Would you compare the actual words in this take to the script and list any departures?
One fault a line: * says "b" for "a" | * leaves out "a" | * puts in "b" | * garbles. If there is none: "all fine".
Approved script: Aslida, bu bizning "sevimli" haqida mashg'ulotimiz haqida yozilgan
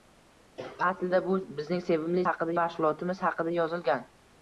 all fine